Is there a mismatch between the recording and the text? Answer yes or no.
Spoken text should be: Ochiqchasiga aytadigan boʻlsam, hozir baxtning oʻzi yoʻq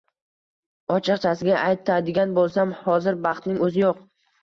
no